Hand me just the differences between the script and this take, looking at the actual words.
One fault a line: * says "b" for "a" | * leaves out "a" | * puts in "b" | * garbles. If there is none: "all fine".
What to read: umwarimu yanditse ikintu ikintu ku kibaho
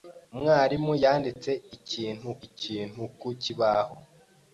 all fine